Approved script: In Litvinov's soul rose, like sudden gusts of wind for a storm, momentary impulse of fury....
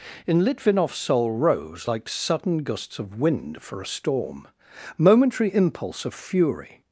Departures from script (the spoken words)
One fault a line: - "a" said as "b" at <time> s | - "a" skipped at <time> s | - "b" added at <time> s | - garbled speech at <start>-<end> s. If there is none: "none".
none